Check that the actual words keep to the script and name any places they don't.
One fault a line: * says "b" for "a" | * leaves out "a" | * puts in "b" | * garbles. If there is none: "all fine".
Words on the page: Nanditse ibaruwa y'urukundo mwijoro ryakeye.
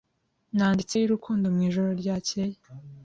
* leaves out "ibaruwa"